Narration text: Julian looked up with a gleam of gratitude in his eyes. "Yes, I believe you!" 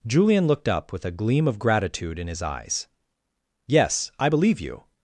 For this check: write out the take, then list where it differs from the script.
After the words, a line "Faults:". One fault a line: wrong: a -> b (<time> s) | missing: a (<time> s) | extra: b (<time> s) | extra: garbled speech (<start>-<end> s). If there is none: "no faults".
Julian looked up with a gleam of gratitude in his eyes. "Yes, I believe you!"
Faults:
no faults